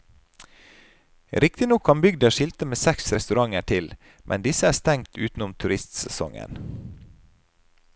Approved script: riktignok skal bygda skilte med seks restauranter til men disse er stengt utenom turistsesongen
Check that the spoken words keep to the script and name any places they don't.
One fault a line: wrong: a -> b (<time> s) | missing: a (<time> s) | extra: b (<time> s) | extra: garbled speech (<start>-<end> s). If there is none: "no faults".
wrong: skal -> kan (1.9 s)